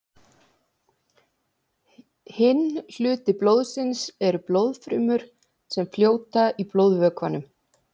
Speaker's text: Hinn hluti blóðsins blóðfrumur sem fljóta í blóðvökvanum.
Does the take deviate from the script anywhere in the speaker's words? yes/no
yes